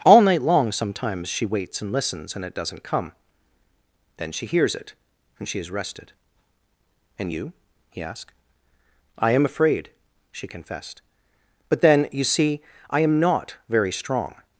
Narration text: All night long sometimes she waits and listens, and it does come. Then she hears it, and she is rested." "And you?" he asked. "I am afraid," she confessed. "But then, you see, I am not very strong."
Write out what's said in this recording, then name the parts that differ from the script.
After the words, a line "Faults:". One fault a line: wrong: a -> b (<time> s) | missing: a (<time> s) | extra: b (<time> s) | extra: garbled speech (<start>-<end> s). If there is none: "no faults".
All night long sometimes she waits and listens, and it doesn't come. Then she hears it, and she is rested." "And you?" he asked. "I am afraid," she confessed. "But then, you see, I am not very strong."
Faults:
wrong: does -> doesn't (2.5 s)